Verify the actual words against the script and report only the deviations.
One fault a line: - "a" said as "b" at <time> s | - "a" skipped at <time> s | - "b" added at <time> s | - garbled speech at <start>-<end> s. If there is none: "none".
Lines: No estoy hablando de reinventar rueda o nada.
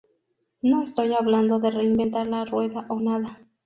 - "la" added at 2.2 s